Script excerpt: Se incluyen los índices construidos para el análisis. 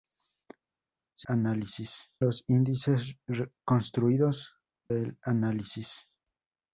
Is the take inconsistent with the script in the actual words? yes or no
yes